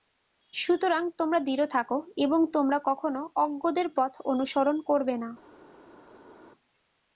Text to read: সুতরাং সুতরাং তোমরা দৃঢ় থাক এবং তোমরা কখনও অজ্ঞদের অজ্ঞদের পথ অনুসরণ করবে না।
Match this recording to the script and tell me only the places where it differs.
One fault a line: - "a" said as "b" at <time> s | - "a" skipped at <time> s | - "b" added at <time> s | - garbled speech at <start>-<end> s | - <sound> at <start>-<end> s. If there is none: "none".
- "সুতরাং" skipped at 1.0 s
- "অজ্ঞদের" skipped at 3.9 s